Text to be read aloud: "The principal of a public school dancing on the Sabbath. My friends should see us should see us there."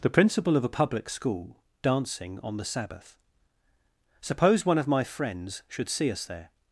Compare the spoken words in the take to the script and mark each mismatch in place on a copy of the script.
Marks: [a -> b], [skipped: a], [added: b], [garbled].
"The principal of a public school dancing on the Sabbath. [My friends should see us -> Suppose one of my friends] should see us there."